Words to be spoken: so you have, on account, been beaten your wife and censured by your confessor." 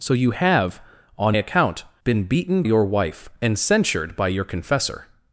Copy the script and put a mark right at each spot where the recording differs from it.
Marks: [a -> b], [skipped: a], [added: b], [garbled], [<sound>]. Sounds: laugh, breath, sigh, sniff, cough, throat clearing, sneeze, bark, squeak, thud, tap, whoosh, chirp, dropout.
so you have, on account, been beaten your wife and censured by your confessor."